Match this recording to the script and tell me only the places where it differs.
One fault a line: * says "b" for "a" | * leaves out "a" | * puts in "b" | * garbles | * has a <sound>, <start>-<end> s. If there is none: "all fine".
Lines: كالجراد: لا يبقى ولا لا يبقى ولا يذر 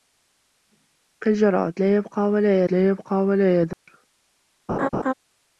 * has a dropout, 3.7-3.9 s
* has a laugh, 4.7-5.1 s